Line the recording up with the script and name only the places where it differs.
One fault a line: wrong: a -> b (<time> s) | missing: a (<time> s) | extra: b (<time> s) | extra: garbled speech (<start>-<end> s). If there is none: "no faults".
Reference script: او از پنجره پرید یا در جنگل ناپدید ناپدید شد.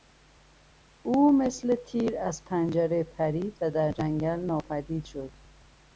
extra: مثل تیر (1.3 s)
wrong: یا -> و (3.6 s)
missing: ناپدید (5.0 s)